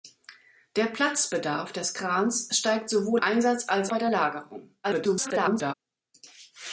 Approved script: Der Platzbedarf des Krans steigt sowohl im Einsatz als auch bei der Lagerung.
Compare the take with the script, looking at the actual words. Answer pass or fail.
fail